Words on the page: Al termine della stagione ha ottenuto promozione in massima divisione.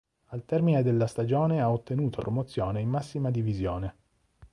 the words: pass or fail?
pass